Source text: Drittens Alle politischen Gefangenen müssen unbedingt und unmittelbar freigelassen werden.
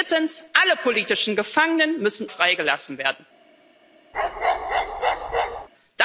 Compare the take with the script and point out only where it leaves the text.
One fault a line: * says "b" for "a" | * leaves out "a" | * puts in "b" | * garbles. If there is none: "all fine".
* leaves out "unbedingt und unmittelbar"